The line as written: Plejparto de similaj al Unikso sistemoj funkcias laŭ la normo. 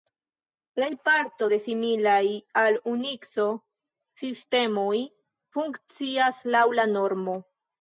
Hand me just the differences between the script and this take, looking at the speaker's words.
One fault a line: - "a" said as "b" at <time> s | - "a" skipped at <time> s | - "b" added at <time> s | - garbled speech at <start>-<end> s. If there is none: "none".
none